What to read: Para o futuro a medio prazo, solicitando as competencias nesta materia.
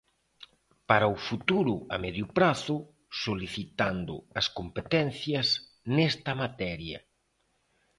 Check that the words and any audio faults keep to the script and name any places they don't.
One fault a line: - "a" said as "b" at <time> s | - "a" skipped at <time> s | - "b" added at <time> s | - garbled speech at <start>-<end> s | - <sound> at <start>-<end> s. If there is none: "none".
none